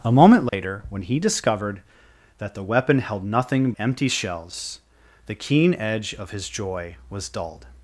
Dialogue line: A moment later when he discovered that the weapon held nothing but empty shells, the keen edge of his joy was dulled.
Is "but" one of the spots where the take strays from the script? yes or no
yes